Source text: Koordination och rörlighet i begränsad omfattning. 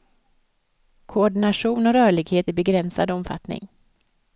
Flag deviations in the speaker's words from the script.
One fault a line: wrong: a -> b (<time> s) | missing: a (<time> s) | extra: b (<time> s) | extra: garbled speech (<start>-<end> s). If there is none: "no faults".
no faults